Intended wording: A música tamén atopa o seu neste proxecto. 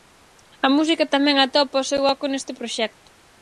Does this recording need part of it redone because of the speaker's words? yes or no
yes